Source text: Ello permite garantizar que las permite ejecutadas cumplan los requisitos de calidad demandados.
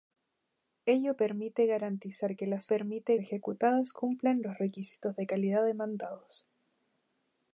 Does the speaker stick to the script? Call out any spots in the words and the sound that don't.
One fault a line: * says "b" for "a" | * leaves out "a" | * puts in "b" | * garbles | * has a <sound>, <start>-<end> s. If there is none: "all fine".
all fine